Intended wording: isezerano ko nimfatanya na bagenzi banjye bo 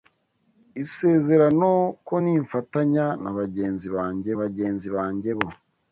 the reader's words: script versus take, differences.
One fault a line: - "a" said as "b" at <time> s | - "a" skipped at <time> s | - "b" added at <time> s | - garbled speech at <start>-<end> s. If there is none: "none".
- "bagenzi banjye" added at 4.4 s